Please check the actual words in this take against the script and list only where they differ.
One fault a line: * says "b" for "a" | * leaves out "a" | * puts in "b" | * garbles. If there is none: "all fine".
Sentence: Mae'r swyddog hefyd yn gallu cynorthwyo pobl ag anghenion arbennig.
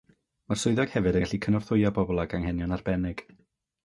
all fine